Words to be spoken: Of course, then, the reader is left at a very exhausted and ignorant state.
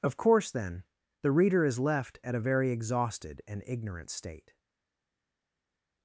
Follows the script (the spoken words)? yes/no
yes